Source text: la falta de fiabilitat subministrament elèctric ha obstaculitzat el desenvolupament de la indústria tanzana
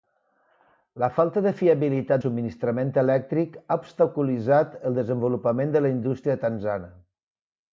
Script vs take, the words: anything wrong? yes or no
no